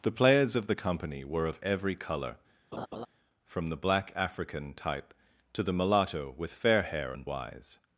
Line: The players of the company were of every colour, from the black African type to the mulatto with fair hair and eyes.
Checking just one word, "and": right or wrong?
right